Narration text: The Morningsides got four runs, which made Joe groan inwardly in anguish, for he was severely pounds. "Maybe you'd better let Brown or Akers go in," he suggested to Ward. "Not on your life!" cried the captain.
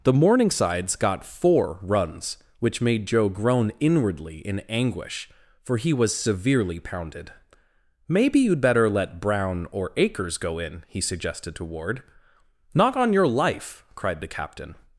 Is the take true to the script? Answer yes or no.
no